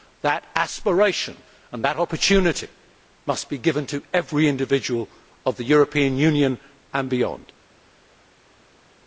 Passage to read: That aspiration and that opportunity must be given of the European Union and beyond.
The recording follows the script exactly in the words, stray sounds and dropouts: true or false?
false